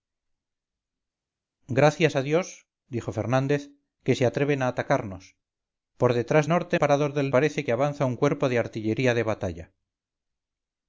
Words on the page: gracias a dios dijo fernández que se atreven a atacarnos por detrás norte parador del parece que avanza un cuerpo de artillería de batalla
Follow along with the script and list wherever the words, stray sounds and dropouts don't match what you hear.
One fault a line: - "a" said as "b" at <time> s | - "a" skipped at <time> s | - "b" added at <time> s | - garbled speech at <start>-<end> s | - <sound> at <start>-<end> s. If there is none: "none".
none